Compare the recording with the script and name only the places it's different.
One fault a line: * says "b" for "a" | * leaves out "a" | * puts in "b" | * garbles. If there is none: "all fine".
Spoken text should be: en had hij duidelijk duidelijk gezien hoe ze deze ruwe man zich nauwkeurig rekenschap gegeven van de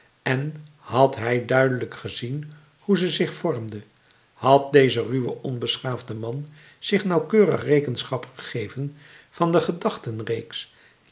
* leaves out "duidelijk"
* puts in "zich vormde had"
* puts in "onbeschaafde"